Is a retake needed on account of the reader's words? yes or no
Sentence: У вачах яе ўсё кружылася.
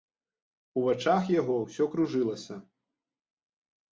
yes